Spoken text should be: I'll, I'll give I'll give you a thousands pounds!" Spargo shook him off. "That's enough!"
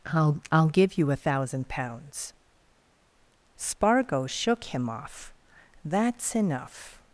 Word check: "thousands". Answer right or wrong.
wrong